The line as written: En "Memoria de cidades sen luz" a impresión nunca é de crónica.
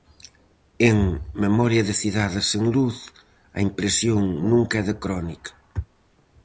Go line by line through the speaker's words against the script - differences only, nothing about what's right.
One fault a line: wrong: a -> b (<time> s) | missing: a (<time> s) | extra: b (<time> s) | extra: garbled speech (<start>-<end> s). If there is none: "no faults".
no faults